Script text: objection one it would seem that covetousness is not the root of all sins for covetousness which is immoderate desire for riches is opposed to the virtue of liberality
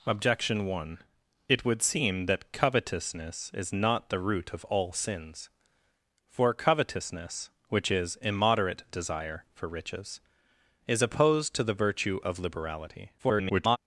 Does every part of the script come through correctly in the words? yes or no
no